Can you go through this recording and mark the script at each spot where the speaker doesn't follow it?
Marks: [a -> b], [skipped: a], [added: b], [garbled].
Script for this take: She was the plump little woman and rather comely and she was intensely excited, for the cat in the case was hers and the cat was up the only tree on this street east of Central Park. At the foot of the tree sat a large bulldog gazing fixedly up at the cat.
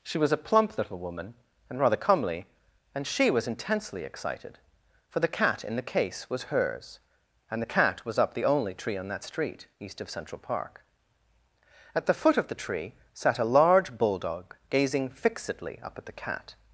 She was [the -> a] plump little woman and rather comely and she was intensely excited, for the cat in the case was hers and the cat was up the only tree on [this -> that] street east of Central Park. At the foot of the tree sat a large bulldog gazing fixedly up at the cat.